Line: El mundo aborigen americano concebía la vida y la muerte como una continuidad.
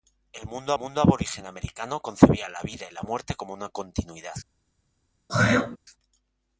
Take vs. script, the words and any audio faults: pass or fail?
fail